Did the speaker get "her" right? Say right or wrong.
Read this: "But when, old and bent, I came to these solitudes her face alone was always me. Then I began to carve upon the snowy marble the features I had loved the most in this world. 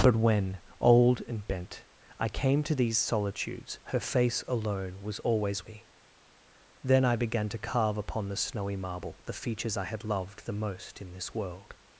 right